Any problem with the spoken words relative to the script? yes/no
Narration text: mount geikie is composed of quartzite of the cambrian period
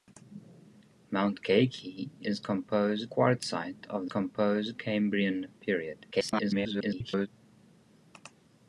yes